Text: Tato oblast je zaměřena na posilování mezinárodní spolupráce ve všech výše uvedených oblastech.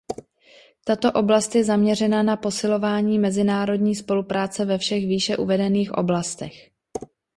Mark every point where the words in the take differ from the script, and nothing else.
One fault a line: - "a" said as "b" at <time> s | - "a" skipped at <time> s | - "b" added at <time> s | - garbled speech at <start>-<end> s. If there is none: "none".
none